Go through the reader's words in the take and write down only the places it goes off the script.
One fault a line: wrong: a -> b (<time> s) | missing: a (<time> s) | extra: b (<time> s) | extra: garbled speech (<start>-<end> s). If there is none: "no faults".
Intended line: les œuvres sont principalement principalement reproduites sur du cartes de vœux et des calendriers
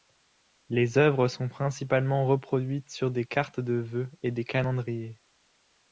missing: principalement (2.2 s)
wrong: du -> des (3.1 s)